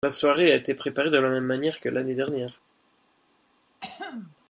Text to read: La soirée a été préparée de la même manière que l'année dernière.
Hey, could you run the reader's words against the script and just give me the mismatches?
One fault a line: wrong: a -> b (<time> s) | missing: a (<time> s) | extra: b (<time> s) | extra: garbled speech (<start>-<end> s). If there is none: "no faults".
no faults